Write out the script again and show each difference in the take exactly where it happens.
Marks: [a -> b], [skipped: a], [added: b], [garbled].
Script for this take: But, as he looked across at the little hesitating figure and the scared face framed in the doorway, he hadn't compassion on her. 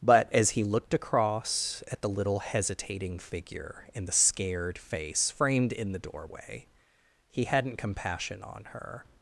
But, as he looked across at the little hesitating figure and the scared face framed in the doorway, he hadn't compassion on her.